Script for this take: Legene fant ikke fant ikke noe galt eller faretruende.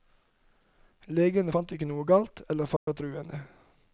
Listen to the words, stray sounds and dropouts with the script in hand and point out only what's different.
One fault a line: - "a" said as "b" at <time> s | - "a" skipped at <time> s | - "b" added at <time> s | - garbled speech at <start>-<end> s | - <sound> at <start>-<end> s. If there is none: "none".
- "fant ikke" skipped at 1.9 s
- dropout at 2.8-2.9 s